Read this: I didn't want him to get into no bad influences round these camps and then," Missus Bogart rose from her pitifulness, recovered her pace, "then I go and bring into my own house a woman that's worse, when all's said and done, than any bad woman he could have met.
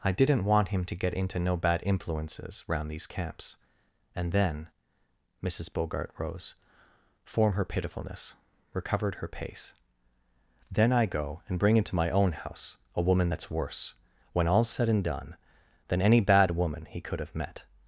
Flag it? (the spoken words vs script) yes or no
yes